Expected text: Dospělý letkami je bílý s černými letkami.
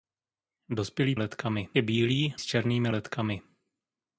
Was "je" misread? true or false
false